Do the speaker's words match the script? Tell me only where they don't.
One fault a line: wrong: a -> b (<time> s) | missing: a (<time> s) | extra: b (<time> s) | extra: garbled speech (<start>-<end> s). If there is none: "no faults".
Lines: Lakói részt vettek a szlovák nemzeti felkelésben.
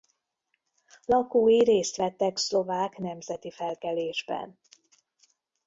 missing: a (2.4 s)